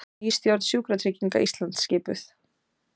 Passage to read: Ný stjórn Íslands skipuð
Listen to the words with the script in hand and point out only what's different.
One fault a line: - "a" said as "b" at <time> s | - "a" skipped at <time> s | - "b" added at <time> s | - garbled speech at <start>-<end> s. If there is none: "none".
- "Sjúkratrygginga" added at 0.7 s